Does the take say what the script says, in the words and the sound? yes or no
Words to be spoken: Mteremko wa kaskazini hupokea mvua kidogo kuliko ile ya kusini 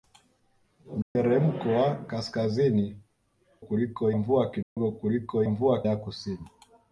no